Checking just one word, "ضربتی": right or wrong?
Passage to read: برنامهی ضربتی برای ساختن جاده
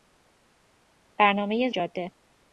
wrong